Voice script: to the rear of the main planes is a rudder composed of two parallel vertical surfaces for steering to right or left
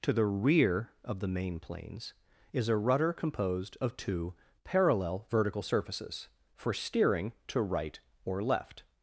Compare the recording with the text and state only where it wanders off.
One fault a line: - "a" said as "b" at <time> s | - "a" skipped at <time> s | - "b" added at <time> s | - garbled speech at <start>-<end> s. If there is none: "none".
none